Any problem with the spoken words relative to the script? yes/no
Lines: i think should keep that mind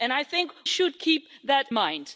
no